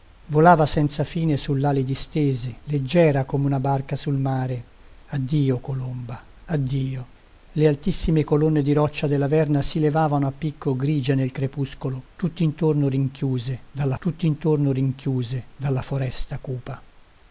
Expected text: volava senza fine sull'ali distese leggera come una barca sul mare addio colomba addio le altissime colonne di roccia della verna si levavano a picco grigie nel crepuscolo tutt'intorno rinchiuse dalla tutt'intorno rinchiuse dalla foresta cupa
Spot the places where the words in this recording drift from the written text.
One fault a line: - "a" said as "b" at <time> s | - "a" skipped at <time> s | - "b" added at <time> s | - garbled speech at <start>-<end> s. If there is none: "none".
none